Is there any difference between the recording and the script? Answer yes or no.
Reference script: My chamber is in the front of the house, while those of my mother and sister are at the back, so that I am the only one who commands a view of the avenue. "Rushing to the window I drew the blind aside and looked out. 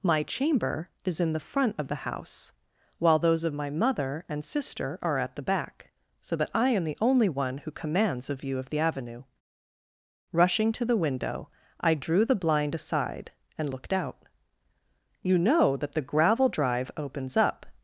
yes